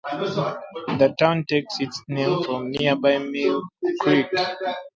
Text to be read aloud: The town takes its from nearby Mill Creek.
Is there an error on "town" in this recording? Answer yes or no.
no